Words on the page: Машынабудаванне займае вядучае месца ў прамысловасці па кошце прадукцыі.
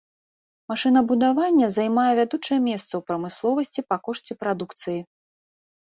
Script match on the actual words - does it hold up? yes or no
yes